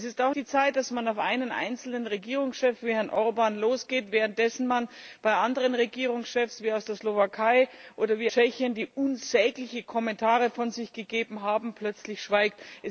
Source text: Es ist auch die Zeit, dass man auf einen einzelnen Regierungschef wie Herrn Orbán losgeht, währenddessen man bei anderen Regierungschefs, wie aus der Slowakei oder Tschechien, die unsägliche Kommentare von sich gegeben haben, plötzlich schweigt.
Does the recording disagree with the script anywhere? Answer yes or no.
no